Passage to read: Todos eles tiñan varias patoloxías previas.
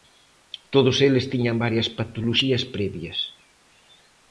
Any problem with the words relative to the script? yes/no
no